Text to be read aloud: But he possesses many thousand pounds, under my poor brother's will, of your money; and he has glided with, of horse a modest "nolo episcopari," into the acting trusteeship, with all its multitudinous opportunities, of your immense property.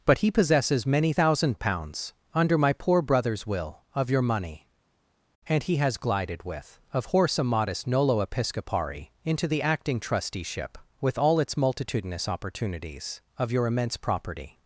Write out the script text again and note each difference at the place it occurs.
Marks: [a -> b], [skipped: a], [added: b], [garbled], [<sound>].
But he possesses many thousand pounds, under my poor brother's will, of your money; and he has glided with, of horse a modest "nolo episcopari," into the acting trusteeship, with all its multitudinous opportunities, of your immense property.